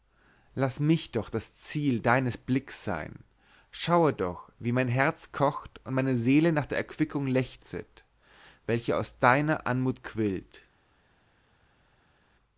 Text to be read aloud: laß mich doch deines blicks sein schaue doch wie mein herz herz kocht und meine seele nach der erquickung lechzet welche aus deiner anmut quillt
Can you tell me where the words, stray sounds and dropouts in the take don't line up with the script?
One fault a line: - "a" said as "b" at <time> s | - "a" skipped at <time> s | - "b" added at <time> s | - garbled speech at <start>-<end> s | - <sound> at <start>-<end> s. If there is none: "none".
- "das ziel" added at 1.3 s
- "herz" skipped at 5.3 s